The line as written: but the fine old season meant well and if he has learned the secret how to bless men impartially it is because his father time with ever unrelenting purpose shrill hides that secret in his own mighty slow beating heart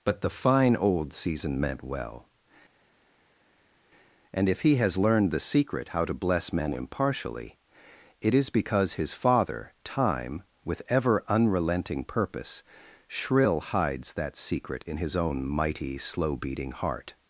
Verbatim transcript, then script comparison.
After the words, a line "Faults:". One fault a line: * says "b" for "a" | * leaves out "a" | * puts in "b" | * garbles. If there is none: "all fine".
but the fine old season meant well and if he has learned the secret how to bless men impartially it is because his father time with ever unrelenting purpose shrill hides that secret in his own mighty slow beating heart
Faults:
all fine